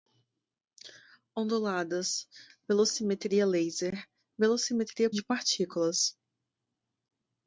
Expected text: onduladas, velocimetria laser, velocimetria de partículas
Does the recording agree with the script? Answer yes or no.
yes